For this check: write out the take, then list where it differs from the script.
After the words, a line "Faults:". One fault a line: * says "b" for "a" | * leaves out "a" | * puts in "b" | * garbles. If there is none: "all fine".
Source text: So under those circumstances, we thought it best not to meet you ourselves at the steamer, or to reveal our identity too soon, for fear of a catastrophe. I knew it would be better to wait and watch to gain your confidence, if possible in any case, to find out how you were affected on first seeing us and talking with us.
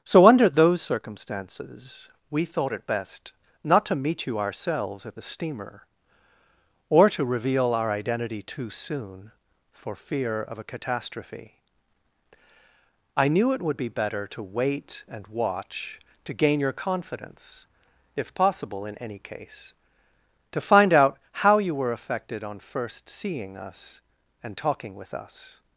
So under those circumstances, we thought it best not to meet you ourselves at the steamer, or to reveal our identity too soon, for fear of a catastrophe. I knew it would be better to wait and watch to gain your confidence, if possible in any case, to find out how you were affected on first seeing us and talking with us.
Faults:
all fine